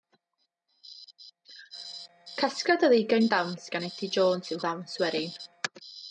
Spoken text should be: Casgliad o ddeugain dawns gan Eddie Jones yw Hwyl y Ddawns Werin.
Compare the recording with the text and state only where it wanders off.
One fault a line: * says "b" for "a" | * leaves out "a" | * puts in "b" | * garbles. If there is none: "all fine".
* leaves out "Hwyl"